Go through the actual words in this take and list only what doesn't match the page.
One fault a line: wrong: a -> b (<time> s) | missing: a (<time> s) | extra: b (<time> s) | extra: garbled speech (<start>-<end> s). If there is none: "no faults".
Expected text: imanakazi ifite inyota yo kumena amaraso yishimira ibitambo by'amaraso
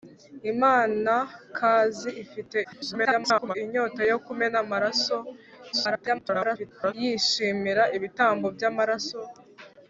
extra: garbled speech (2.6-3.6 s)
extra: garbled speech (5.7-6.9 s)